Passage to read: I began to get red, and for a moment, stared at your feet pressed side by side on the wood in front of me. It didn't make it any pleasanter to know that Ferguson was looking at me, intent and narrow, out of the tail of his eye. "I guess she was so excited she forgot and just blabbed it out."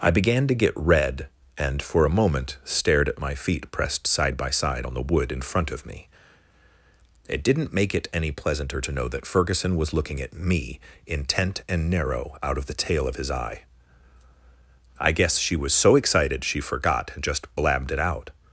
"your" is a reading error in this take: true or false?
true